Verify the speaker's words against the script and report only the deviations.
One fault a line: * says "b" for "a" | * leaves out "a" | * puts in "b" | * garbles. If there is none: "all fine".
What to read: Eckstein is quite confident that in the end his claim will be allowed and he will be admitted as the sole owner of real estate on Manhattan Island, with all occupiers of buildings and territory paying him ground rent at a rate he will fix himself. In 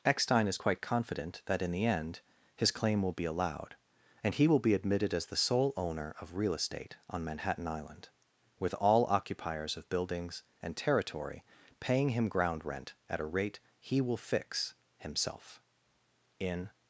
all fine